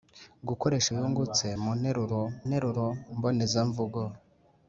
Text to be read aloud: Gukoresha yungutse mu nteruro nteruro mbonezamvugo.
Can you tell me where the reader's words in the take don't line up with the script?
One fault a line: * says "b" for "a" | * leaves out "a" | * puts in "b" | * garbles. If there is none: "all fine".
all fine